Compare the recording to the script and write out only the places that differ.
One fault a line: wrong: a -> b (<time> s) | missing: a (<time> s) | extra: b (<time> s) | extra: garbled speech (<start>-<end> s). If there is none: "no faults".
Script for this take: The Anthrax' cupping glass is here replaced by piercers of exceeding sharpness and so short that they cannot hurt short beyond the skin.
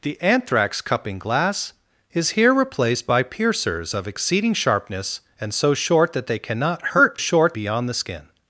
no faults